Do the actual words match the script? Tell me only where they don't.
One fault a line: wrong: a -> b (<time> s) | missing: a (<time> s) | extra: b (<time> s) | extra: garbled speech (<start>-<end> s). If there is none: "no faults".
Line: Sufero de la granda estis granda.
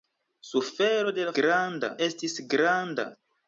no faults